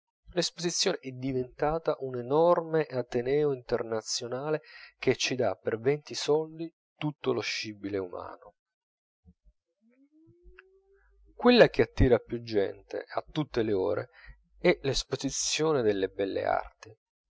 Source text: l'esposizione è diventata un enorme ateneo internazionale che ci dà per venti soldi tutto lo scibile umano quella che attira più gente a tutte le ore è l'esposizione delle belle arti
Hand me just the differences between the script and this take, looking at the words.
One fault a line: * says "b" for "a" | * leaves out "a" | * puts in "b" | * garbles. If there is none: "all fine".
all fine